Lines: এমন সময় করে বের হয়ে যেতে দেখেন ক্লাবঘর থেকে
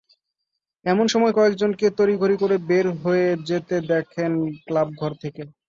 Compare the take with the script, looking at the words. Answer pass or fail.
fail